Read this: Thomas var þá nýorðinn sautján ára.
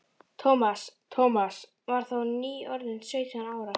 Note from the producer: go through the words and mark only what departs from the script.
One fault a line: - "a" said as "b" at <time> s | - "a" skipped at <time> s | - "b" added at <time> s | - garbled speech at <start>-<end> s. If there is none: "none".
- "thomas" added at 1.2 s